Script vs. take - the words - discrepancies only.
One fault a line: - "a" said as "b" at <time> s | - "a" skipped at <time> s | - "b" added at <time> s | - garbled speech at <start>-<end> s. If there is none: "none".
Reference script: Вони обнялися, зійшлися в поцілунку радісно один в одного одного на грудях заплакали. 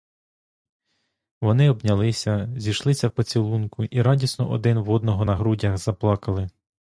- "і" added at 3.8 s
- "одного" skipped at 5.2 s